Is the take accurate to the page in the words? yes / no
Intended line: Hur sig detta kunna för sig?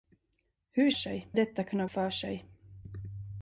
yes